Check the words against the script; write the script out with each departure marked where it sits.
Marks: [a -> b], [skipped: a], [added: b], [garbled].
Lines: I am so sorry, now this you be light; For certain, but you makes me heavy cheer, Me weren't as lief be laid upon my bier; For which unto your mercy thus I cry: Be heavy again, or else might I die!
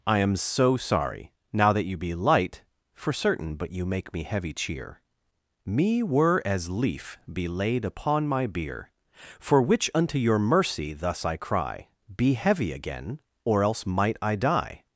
I am so sorry, now [this -> that] you be light; For certain, but you [makes -> make] me heavy cheer, Me [weren't -> were] as lief be laid upon my bier; For which unto your mercy thus I cry: Be heavy again, or else might I die!